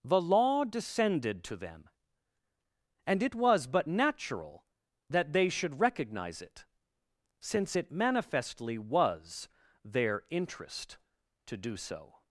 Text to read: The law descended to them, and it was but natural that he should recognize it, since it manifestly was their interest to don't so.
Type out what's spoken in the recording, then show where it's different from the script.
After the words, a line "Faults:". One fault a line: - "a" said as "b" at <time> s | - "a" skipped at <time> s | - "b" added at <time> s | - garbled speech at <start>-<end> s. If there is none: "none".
The law descended to them, and it was but natural that they should recognize it, since it manifestly was their interest to do so.
Faults:
- "he" said as "they" at 5.3 s
- "don't" said as "do" at 11.6 s